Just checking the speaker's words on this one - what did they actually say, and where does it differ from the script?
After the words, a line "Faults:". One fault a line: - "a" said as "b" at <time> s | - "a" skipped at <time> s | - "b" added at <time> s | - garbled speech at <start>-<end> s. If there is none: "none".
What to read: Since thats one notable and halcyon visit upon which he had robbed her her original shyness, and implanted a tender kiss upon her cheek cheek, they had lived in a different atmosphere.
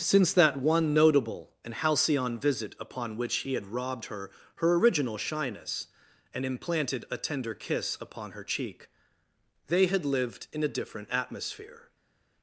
Since that one notable and halcyon visit upon which he had robbed her her original shyness, and implanted a tender kiss upon her cheek, they had lived in a different atmosphere.
Faults:
- "thats" said as "that" at 0.3 s
- "cheek" skipped at 8.9 s